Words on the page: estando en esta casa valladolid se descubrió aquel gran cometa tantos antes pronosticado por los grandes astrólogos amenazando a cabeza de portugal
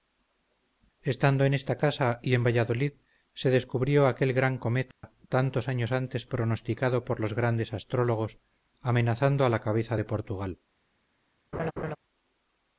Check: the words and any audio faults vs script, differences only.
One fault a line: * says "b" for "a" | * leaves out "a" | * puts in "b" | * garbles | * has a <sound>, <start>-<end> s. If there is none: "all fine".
* puts in "y en"
* has a dropout, 4.9-5.0 s
* puts in "años"
* puts in "la"
* has a laugh, 11.5-12.0 s